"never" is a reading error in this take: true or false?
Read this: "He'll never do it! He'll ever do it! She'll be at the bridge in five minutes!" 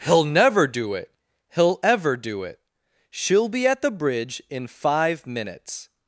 false